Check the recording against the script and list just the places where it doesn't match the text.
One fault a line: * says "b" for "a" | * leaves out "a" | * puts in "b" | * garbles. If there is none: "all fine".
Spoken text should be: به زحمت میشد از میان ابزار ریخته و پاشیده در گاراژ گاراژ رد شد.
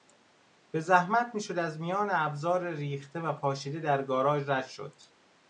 * leaves out "گاراژ"